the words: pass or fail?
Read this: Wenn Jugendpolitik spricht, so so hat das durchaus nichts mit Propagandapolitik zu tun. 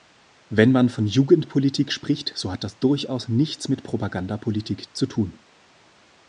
fail